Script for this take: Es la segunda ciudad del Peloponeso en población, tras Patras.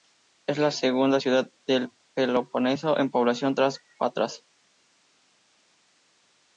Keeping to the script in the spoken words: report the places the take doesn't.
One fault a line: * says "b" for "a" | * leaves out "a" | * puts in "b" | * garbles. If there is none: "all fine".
all fine